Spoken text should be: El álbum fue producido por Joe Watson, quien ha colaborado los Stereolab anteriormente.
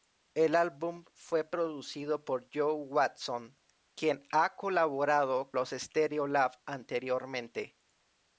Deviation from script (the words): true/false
false